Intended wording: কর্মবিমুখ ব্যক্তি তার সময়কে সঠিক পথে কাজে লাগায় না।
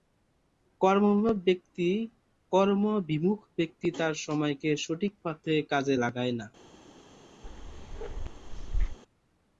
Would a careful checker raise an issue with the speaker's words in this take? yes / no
no